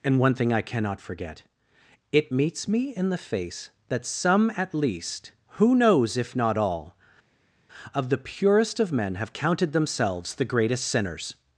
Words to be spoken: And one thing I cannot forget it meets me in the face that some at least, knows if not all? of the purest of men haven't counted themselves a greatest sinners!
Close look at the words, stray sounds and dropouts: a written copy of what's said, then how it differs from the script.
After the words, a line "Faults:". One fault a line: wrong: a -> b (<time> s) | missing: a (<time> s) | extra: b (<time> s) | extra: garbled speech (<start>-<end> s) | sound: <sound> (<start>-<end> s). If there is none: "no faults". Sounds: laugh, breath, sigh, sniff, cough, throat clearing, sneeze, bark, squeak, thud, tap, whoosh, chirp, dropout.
And one thing I cannot forget it meets me in the face that some at least, who knows if not all? of the purest of men have counted themselves the greatest sinners!
Faults:
extra: who (5.6 s)
wrong: haven't -> have (9.1 s)
wrong: a -> the (10.3 s)